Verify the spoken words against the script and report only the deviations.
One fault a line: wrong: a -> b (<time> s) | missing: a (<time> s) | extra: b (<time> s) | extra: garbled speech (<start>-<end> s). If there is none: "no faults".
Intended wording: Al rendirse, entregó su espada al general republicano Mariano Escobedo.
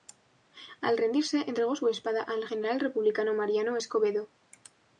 no faults